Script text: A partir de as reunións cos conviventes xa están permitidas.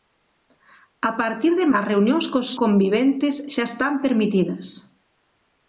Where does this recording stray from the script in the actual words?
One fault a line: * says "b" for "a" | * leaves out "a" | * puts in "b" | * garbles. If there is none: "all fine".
all fine